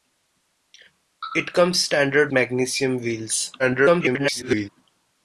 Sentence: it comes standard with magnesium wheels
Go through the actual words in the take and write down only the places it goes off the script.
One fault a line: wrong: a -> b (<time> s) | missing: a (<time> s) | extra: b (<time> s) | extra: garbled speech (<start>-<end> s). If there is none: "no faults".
missing: with (2.3 s)
extra: garbled speech (3.6-4.7 s)